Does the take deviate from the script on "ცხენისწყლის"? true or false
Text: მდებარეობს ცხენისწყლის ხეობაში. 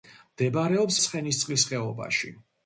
false